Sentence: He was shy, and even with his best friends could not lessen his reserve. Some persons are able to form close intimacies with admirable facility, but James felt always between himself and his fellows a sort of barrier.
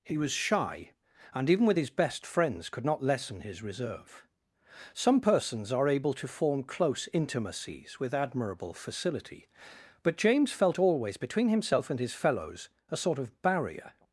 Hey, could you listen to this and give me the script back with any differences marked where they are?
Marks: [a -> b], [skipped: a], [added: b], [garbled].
He was shy, and even with his best friends could not lessen his reserve. Some persons are able to form close intimacies with admirable facility, but James felt always between himself and his fellows a sort of barrier.